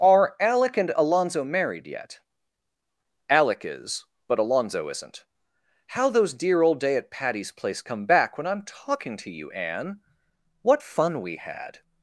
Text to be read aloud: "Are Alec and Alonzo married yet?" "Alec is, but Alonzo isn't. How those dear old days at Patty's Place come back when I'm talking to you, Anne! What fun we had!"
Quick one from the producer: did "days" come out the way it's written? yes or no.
no